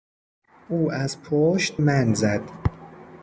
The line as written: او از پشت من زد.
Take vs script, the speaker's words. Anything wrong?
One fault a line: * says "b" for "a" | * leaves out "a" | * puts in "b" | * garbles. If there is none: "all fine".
all fine